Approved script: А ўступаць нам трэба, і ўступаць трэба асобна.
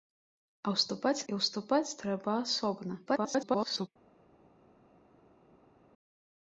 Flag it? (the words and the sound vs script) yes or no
yes